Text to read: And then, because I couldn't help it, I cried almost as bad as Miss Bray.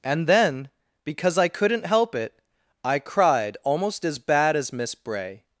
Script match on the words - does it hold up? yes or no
yes